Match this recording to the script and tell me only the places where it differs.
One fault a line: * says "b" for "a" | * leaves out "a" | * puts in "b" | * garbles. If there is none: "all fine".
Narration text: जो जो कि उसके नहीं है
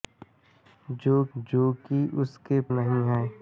all fine